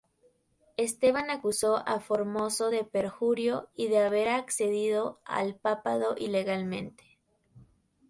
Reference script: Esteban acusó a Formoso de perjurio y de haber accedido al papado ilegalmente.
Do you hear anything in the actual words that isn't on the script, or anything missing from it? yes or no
no